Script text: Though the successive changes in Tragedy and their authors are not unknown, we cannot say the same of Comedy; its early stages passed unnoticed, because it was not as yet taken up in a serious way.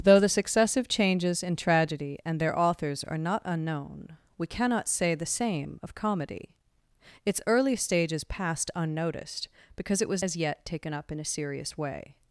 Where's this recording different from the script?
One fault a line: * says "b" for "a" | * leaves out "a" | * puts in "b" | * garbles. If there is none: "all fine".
* leaves out "not"